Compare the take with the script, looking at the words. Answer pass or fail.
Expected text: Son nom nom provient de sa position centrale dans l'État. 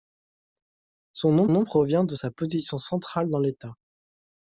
pass